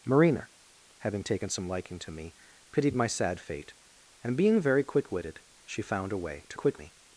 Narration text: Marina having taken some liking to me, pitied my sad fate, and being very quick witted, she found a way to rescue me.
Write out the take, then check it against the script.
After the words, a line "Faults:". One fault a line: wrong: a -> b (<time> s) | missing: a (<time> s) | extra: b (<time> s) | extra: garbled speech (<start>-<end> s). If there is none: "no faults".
Marina having taken some liking to me, pitied my sad fate, and being very quick witted, she found a way to quick me.
Faults:
wrong: rescue -> quick (6.5 s)